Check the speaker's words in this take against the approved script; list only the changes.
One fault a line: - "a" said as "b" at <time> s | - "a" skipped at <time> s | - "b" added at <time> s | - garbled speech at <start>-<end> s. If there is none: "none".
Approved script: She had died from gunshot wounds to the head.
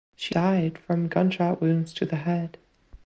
- "had" skipped at 0.3 s